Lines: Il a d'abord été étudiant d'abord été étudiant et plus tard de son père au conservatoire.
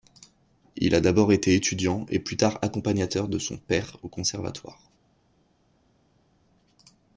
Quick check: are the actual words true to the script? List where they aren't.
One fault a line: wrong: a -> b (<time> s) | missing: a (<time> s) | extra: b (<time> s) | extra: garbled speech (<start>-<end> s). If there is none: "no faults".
missing: d'abord été étudiant (2.1 s)
extra: accompagnateur (2.6 s)